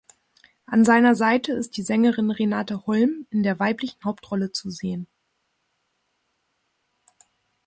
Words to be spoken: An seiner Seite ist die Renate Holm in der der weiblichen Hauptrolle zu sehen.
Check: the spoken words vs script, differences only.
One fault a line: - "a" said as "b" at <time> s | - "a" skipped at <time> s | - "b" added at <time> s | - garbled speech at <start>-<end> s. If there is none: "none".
- "Sängerin" added at 1.8 s
- "der" skipped at 3.6 s